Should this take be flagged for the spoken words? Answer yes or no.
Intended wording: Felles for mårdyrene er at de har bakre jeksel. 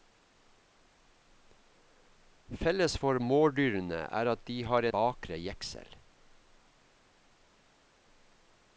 no